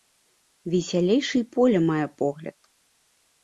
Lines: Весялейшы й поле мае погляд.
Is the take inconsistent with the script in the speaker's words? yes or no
no